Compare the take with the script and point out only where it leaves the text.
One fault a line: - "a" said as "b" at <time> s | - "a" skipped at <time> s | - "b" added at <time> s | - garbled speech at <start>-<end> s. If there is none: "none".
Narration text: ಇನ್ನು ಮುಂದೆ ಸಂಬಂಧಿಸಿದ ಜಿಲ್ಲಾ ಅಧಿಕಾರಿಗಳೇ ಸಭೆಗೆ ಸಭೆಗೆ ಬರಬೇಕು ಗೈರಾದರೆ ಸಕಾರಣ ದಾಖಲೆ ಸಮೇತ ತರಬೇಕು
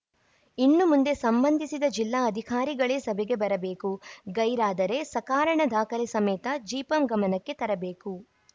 - "ಸಭೆಗೆ" skipped at 3.4 s
- "ಜಿಪಂ ಗಮನಕ್ಕೆ" added at 6.7 s